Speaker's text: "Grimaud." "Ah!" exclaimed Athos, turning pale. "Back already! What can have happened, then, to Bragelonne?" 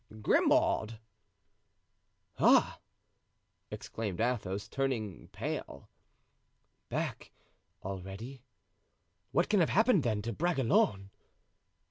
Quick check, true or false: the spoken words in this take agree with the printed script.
true